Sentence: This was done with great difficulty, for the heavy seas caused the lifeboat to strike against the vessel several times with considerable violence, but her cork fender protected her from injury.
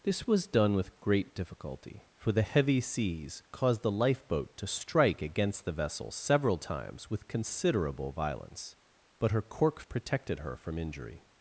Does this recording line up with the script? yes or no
no